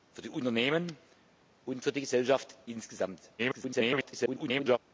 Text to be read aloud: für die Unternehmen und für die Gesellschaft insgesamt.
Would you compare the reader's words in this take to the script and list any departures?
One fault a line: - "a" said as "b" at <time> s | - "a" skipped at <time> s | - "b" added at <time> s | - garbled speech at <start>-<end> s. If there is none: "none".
- garbled speech at 3.4-4.8 s